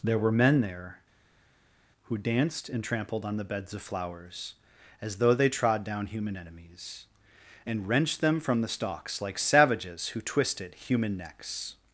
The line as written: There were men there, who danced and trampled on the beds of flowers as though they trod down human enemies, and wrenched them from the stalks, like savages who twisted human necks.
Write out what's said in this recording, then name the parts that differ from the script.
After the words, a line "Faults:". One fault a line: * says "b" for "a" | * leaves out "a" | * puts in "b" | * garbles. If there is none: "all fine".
There were men there, who danced and trampled on the beds of flowers as though they trod down human enemies, and wrenched them from the stalks, like savages who twisted human necks.
Faults:
all fine